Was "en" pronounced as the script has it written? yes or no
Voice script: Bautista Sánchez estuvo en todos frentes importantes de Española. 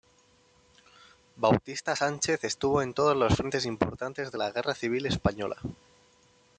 yes